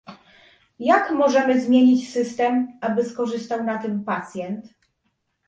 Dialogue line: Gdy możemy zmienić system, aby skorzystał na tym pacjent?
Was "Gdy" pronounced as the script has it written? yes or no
no